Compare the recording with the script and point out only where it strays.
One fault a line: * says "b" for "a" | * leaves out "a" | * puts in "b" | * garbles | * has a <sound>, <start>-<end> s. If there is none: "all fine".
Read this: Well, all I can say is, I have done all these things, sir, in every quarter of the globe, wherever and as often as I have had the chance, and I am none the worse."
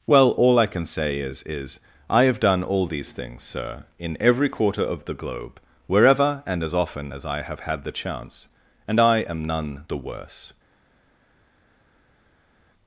* puts in "is"